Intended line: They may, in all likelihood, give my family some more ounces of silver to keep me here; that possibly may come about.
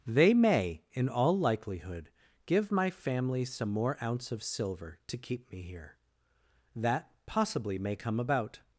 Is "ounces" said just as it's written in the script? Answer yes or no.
no